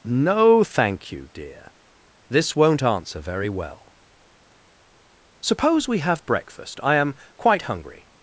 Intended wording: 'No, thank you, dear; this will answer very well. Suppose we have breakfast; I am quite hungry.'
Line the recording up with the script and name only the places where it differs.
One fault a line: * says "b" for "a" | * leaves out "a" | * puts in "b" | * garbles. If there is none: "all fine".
* says "won't" for "will"